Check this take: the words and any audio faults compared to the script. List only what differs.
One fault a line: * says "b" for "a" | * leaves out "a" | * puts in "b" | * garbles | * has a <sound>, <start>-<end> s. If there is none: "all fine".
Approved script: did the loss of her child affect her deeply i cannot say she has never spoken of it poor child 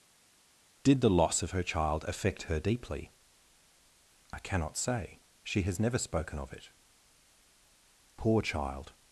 all fine